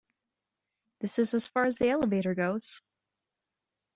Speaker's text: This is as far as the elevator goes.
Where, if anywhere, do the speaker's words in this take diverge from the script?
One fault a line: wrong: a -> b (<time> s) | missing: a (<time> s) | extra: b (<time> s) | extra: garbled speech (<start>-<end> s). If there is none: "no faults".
no faults